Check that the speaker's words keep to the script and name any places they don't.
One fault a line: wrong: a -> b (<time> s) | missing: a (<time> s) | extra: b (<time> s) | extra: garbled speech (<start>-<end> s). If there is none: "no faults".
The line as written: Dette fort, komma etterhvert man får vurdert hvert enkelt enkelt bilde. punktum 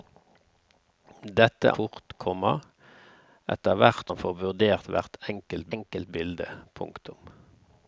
no faults